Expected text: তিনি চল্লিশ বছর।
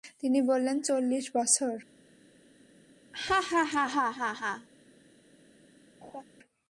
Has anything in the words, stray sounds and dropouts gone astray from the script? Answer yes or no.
yes